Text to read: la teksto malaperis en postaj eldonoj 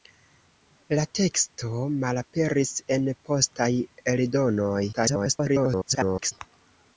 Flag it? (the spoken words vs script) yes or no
yes